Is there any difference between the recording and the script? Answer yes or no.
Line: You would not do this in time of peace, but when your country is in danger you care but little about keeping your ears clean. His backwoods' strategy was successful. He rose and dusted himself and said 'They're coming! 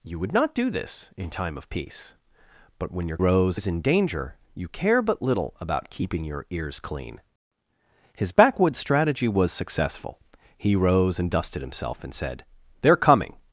yes